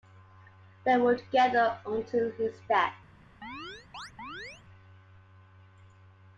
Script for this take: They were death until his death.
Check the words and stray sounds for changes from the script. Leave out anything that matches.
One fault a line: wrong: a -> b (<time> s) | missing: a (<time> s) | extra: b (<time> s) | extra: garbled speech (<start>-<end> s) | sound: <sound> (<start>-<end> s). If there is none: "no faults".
wrong: death -> together (1.1 s)
sound: chirp (3.4-4.6 s)